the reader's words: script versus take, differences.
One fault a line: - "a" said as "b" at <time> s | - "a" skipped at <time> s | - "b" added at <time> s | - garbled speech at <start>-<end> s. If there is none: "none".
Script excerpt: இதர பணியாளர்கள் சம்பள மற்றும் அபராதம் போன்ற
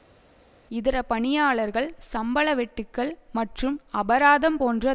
- "வெட்டுக்கள்" added at 2.5 s